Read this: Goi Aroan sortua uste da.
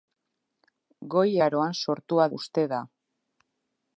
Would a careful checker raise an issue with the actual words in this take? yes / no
no